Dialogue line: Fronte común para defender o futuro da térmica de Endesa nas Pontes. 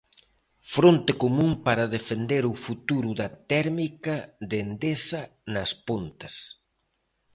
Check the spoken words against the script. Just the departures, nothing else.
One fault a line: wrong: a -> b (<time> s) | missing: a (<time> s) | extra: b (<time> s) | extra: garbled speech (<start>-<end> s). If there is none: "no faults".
no faults